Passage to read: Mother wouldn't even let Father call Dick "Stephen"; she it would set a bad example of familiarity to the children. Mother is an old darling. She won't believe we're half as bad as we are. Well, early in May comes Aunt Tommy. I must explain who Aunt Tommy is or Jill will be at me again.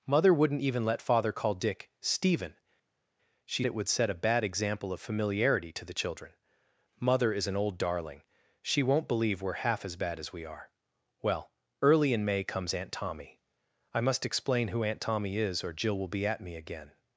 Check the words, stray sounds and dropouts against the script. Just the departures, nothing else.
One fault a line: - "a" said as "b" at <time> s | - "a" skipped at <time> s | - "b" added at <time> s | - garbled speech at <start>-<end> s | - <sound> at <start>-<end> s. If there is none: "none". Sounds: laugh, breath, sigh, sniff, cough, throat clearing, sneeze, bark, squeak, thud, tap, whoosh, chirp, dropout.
none